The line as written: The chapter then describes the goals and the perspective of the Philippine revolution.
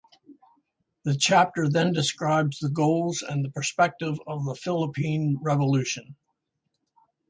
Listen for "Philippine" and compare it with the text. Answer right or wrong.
right